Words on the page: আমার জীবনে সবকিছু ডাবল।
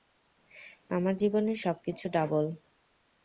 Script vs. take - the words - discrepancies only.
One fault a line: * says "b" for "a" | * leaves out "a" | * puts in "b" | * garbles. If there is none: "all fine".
all fine